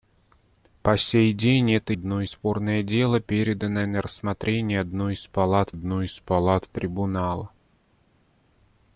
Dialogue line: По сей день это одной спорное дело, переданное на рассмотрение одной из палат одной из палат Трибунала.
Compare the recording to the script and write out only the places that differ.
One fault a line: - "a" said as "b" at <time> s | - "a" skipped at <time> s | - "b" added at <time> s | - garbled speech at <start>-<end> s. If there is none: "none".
none